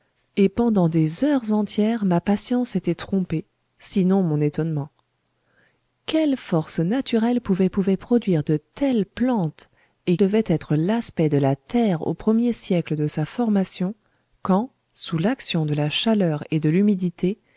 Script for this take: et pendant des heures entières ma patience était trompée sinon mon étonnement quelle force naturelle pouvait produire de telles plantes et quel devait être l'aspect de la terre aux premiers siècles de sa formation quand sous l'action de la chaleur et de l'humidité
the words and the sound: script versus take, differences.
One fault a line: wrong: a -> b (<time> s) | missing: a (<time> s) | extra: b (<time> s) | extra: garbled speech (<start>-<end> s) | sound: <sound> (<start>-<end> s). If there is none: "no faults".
extra: pouvait (7.7 s)
missing: quel (10.2 s)